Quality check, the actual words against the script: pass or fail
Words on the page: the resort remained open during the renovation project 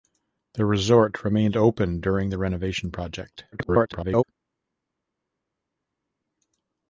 fail